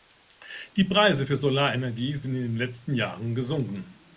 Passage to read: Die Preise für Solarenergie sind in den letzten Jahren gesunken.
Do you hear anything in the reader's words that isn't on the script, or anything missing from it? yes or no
no